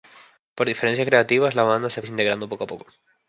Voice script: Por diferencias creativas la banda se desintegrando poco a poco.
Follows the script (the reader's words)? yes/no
yes